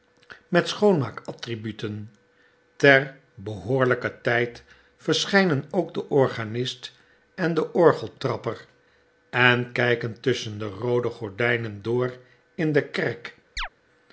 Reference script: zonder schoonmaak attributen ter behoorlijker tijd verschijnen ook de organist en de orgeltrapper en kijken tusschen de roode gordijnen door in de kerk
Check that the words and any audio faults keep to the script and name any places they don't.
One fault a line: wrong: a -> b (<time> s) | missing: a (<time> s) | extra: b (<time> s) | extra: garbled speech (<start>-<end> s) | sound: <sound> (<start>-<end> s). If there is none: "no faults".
wrong: zonder -> met (0.5 s)
sound: chirp (13.6-13.7 s)